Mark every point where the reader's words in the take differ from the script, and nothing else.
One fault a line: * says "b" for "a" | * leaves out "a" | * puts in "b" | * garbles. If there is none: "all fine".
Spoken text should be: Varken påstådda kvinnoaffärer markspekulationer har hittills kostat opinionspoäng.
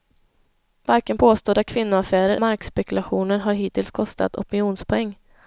all fine